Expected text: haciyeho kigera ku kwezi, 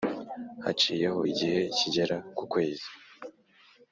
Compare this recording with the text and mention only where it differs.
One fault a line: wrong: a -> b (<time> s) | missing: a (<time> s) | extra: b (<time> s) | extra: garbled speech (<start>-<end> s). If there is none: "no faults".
extra: igihe (1.3 s)